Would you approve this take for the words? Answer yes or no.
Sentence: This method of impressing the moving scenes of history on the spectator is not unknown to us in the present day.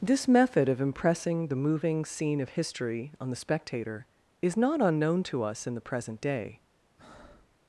no